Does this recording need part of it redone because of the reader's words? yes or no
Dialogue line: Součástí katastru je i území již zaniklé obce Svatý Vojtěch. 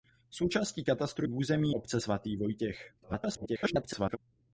yes